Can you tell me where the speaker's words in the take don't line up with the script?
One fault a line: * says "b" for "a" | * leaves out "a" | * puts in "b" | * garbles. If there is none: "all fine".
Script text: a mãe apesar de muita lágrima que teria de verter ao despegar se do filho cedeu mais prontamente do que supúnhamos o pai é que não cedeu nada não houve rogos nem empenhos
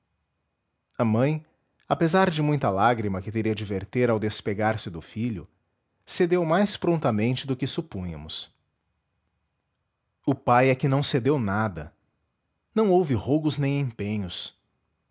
all fine